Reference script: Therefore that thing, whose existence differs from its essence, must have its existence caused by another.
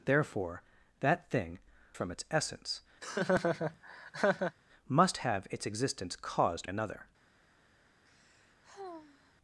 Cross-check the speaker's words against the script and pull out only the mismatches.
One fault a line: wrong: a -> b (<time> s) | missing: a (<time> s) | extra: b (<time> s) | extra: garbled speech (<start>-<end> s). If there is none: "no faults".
missing: whose existence differs (1.6 s)
missing: by (6.7 s)